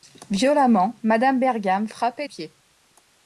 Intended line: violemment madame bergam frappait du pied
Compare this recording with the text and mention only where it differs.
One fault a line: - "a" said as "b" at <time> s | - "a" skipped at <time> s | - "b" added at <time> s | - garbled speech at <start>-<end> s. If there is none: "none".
- "du" skipped at 2.3 s